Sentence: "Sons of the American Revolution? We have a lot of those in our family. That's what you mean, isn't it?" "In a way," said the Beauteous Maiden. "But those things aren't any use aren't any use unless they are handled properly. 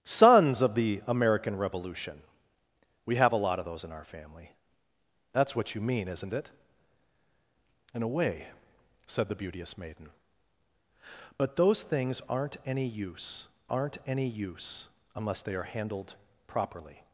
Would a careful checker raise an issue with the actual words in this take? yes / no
no